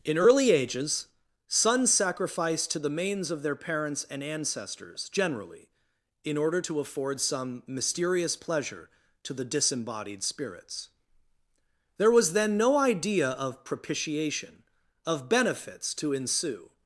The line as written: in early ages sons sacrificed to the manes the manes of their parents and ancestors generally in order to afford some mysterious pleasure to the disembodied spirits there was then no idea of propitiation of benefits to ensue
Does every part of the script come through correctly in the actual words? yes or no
no